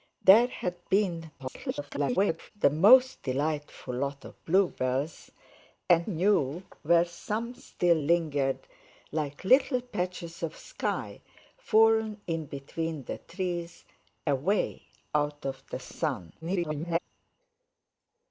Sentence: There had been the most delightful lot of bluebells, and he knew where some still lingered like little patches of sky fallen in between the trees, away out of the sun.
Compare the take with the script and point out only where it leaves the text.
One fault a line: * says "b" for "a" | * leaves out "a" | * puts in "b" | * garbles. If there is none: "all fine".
* garbles
* leaves out "he"
* garbles